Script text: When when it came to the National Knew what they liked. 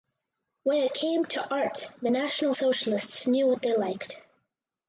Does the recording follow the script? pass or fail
fail